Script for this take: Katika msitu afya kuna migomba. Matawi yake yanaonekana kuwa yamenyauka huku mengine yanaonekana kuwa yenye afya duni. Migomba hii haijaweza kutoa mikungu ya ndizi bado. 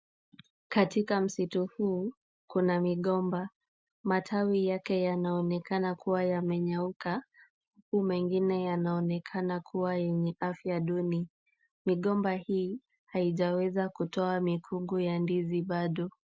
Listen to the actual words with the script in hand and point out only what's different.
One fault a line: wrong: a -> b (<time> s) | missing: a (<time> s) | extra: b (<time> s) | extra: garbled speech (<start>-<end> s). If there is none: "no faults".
wrong: afya -> huu (1.8 s)